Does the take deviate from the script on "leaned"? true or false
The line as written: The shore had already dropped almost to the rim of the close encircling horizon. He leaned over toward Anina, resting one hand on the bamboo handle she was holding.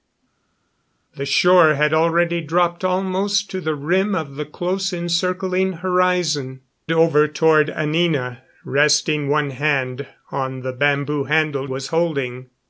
true